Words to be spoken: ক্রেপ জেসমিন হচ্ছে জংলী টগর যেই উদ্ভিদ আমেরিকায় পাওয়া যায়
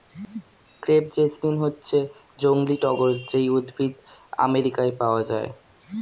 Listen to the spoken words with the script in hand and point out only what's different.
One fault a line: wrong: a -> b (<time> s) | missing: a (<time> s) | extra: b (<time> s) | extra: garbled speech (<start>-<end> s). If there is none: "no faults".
no faults